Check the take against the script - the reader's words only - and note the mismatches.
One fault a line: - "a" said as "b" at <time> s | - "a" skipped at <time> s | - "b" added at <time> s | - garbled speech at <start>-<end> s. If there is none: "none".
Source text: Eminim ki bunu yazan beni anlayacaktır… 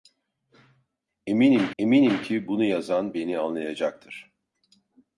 - "eminim" added at 1.8 s